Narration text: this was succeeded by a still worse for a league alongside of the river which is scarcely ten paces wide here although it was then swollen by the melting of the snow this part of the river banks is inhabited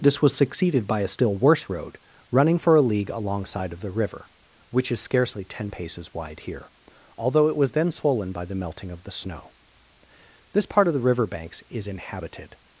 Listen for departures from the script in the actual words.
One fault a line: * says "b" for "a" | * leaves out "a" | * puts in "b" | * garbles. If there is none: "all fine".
* puts in "road running"